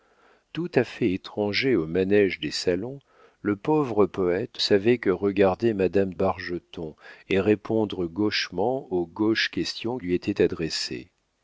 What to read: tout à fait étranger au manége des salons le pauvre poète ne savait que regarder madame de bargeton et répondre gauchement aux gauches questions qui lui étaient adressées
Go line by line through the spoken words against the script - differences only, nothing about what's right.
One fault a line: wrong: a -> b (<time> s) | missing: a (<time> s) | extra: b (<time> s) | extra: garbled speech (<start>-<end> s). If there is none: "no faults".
missing: ne (4.6 s)
missing: de (6.1 s)
missing: qui (10.0 s)